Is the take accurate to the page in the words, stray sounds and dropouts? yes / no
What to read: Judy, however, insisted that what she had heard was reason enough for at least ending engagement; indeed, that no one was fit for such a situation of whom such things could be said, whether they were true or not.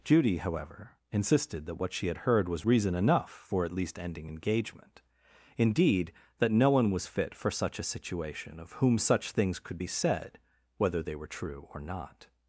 yes